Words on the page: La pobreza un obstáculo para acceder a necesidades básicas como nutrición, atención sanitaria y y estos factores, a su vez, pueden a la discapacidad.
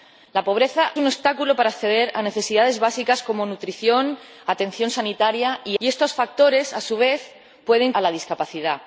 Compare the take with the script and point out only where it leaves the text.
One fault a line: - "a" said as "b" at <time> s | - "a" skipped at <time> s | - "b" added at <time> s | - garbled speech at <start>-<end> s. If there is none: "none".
none